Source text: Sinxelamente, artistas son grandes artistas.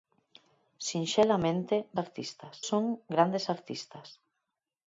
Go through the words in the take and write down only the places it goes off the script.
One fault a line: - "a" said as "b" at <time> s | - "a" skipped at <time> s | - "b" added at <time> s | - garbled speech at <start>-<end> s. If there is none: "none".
none